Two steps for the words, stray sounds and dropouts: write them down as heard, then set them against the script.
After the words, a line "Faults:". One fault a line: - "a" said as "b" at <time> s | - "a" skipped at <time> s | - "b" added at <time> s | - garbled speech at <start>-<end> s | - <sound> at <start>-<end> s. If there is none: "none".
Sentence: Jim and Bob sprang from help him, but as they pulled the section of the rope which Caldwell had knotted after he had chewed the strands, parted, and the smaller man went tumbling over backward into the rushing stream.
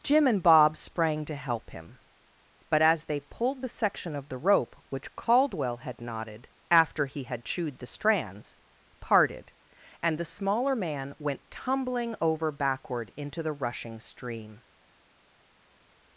Jim and Bob sprang to help him, but as they pulled the section of the rope which Caldwell had knotted after he had chewed the strands, parted, and the smaller man went tumbling over backward into the rushing stream.
Faults:
- "from" said as "to" at 1.2 s